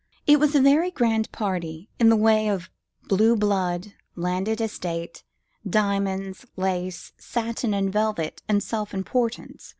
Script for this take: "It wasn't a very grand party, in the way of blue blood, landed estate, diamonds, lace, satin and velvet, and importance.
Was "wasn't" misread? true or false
true